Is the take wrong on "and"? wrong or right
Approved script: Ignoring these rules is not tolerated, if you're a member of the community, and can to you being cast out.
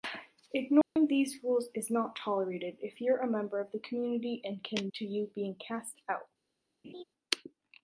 right